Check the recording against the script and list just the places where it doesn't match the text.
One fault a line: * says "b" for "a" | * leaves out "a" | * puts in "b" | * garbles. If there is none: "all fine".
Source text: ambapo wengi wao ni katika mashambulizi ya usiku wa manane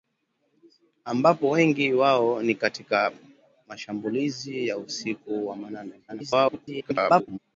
* garbles